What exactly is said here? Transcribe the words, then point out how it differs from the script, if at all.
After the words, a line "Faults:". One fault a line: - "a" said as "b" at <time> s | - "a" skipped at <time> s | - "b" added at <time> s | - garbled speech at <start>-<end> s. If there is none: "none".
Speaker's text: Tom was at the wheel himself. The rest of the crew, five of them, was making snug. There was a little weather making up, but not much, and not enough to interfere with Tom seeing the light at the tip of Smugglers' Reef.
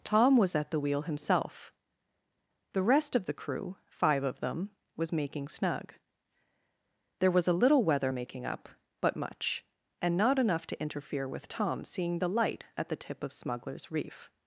Tom was at the wheel himself. The rest of the crew, five of them, was making snug. There was a little weather making up, but much, and not enough to interfere with Tom seeing the light at the tip of Smugglers' Reef.
Faults:
- "not" skipped at 9.2 s